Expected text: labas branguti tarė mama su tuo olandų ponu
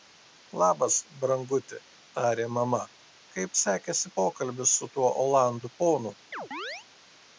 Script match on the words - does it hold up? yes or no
no